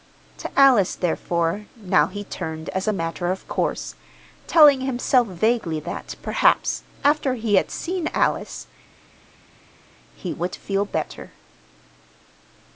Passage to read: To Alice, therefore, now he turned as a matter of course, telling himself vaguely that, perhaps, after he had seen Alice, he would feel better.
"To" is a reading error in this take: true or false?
false